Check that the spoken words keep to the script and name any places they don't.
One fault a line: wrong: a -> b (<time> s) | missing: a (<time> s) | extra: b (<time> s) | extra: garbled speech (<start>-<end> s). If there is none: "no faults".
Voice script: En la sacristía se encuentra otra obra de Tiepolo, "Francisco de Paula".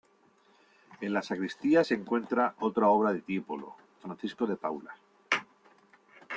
no faults